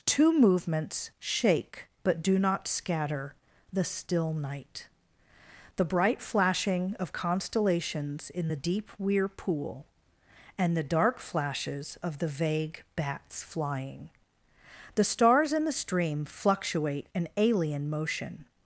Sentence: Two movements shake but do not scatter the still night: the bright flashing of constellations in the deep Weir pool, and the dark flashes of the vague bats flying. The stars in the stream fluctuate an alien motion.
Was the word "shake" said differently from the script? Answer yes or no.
no